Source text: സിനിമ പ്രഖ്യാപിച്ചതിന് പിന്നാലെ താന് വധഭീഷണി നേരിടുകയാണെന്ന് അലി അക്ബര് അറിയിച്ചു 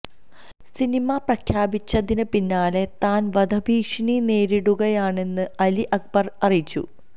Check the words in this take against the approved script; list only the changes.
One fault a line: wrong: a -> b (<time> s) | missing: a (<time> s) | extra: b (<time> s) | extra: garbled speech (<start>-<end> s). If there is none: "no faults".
no faults